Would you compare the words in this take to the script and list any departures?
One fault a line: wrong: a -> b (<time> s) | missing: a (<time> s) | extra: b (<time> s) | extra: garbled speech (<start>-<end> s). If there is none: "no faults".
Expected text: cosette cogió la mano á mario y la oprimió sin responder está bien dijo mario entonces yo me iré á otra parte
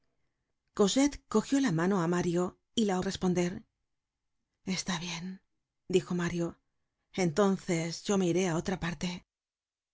missing: oprimió sin (3.0 s)